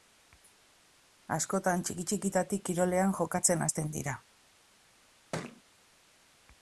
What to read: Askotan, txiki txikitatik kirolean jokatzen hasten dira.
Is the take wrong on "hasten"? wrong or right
right